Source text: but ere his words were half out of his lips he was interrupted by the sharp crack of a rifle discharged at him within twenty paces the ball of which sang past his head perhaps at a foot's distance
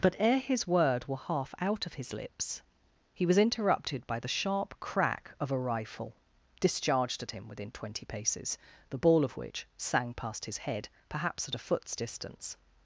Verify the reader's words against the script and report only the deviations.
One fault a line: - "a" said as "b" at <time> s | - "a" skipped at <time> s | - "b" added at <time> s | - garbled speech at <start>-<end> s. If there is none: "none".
- "words" said as "word" at 0.7 s